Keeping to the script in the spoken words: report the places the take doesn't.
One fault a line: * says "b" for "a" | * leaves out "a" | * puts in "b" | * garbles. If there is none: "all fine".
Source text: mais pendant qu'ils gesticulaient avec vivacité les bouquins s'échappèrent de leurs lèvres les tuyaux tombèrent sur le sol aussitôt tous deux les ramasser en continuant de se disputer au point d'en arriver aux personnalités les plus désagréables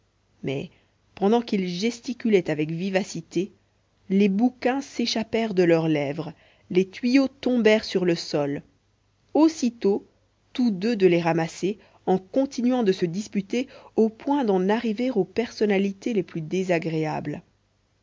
* puts in "de"